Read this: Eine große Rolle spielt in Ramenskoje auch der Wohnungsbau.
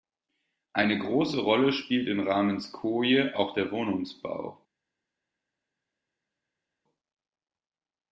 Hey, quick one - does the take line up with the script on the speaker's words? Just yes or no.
yes